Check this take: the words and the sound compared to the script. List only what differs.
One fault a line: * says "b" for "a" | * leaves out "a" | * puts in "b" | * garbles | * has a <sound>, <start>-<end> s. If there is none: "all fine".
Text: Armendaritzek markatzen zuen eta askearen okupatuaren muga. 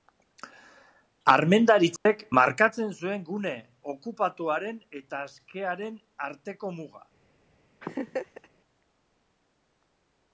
* has a dropout, 2.0-2.1 s
* puts in "gune okupatuaren"
* says "arteko" for "okupatuaren"
* has a laugh, 7.8-8.5 s